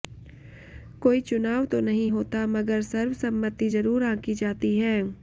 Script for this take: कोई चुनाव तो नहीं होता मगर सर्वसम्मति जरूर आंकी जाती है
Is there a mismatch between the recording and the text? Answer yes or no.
no